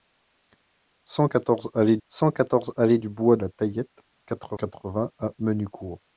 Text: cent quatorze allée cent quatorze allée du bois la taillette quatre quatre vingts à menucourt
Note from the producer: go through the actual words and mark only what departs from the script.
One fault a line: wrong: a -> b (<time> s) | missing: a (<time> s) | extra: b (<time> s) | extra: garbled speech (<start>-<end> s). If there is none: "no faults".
no faults